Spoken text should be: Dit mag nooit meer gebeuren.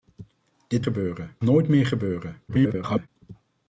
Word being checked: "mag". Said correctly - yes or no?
no